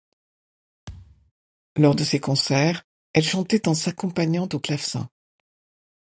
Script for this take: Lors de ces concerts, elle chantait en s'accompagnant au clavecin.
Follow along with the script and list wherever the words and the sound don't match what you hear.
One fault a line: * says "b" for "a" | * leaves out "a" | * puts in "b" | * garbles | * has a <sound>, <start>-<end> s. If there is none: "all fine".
* has a thud, 0.9-1.3 s